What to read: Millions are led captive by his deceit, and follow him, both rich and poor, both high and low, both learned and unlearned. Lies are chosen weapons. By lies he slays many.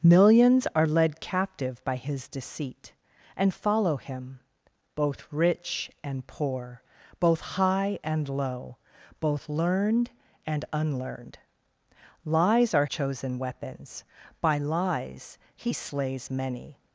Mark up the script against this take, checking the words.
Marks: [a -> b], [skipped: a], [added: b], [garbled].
Millions are led captive by his deceit, and follow him, both rich and poor, both high and low, both learned and unlearned. Lies are chosen weapons. By lies he slays many.